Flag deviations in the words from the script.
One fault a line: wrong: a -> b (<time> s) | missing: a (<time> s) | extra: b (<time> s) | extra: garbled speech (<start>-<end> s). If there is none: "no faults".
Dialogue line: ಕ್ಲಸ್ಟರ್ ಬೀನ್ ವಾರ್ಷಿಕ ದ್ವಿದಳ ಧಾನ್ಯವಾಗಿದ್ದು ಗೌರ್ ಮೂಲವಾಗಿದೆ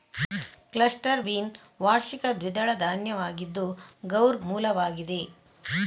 no faults